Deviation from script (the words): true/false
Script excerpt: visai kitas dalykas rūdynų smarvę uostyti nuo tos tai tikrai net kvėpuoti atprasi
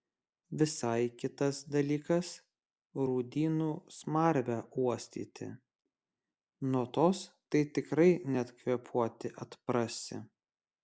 false